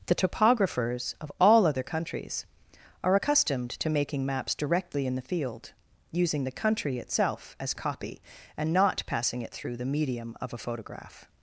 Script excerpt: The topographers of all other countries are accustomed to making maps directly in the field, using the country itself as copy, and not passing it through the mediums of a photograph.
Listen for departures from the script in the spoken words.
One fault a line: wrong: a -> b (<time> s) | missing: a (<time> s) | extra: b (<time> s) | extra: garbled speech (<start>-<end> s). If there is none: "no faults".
wrong: mediums -> medium (9.8 s)